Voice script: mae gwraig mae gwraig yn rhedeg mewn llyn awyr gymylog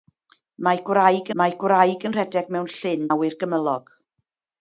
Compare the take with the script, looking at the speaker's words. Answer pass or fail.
pass